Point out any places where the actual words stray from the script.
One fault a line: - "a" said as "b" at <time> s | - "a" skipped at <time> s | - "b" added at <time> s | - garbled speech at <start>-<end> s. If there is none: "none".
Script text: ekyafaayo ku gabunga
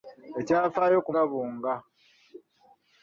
none